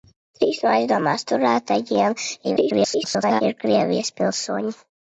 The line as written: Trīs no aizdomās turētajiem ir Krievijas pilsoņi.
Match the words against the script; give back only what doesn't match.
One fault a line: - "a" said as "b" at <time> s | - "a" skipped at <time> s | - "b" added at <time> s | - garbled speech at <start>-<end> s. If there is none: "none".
- garbled speech at 2.4-3.4 s